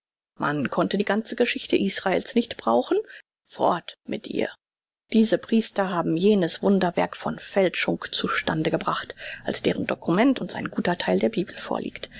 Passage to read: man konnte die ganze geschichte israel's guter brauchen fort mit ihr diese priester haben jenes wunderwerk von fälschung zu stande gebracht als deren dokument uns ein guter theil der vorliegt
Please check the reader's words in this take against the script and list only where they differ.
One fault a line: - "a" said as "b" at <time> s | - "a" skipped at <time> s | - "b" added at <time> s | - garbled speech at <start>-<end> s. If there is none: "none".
- "guter" said as "nicht" at 2.3 s
- "bibel" added at 11.3 s